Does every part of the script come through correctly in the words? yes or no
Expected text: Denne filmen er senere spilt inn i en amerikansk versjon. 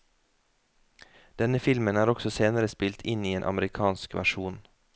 no